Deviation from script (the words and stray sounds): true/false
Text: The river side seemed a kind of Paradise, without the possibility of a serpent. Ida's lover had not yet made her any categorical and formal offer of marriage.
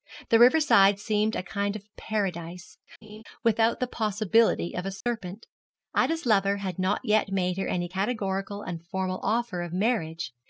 true